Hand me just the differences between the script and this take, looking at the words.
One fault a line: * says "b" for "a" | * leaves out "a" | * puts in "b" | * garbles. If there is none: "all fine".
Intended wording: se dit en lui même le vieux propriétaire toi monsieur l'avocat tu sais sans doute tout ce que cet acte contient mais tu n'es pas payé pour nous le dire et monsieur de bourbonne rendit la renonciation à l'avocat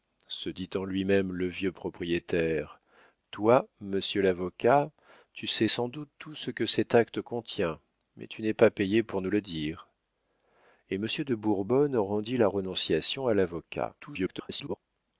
* garbles